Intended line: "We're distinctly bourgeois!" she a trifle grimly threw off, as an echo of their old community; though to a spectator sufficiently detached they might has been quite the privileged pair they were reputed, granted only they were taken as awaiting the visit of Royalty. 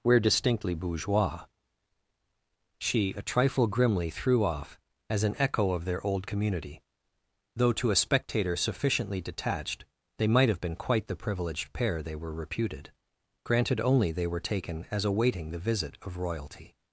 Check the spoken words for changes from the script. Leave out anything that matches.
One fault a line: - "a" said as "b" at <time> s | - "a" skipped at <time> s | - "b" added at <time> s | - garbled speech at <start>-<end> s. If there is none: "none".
- "has" said as "have" at 10.5 s